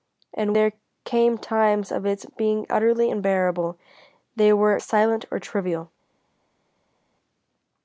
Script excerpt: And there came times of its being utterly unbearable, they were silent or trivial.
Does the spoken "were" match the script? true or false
true